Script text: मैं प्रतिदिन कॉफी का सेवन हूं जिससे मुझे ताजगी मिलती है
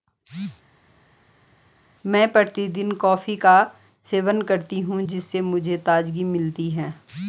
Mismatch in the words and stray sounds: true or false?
true